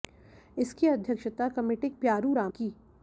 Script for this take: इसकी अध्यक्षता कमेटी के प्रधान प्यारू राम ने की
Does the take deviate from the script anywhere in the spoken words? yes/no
yes